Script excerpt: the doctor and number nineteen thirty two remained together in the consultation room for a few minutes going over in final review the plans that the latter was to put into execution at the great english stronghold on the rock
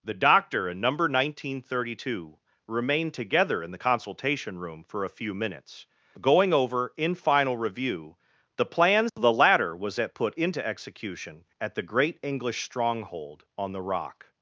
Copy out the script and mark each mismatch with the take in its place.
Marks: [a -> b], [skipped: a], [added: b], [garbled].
the doctor and number nineteen thirty two remained together in the consultation room for a few minutes going over in final review the plans [skipped: that] the latter was [to -> at] put into execution at the great english stronghold on the rock